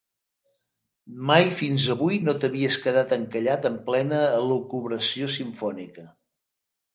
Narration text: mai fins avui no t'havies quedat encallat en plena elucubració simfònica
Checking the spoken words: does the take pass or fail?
pass